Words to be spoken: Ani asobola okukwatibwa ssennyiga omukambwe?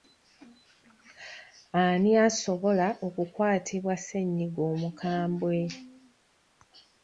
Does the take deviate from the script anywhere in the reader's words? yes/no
no